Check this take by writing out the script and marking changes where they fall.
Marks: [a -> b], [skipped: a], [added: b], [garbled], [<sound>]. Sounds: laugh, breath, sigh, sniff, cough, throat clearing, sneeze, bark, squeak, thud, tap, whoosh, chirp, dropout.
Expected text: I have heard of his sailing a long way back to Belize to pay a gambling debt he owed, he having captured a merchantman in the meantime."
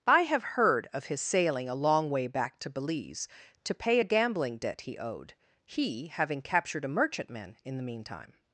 I have heard of his sailing a long way back to Belize to pay a gambling debt he owed, he having captured a merchantman in the meantime."